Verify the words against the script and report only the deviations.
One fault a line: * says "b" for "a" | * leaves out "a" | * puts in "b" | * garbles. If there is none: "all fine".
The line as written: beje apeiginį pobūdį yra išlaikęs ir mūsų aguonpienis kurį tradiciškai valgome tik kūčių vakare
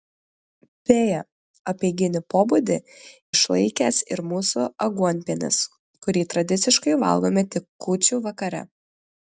* leaves out "yra"